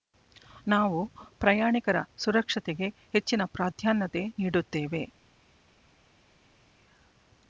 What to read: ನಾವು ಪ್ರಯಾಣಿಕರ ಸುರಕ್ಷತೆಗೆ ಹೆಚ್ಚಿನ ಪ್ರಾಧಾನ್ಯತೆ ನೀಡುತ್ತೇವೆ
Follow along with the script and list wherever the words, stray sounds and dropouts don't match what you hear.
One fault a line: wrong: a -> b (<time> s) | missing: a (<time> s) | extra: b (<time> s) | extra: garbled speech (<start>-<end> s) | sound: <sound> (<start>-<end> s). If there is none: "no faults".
no faults